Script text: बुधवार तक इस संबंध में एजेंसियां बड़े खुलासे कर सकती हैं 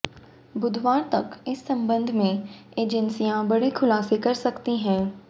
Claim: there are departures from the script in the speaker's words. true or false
false